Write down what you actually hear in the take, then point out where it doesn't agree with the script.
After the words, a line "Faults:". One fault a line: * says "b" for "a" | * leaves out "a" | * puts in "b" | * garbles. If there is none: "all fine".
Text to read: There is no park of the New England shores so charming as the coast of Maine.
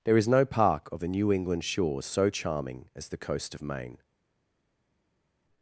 There is no park of the New England shores so charming as the coast of Maine.
Faults:
all fine